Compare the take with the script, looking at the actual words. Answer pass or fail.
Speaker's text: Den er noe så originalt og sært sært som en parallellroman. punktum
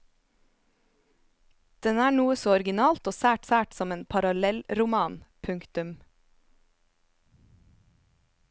pass